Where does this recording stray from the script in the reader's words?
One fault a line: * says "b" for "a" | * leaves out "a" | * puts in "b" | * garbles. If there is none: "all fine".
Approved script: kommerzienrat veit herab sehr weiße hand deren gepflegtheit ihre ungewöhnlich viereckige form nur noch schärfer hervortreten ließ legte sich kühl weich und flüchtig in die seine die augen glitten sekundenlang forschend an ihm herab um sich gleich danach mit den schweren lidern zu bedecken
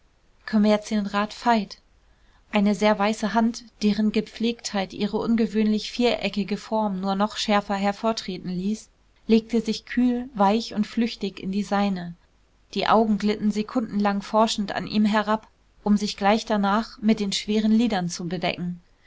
* says "eine" for "herab"